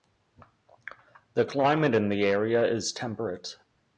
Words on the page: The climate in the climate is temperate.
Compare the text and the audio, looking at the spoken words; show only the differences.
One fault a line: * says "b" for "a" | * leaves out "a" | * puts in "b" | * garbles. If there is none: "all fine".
* says "area" for "climate"